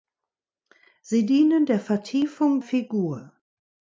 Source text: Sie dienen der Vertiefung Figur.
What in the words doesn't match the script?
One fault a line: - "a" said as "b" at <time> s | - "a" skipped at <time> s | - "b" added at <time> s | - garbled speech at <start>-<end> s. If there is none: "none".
none